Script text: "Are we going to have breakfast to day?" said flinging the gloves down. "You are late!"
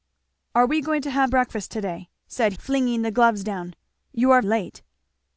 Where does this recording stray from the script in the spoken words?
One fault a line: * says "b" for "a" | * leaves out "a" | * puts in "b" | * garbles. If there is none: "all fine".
all fine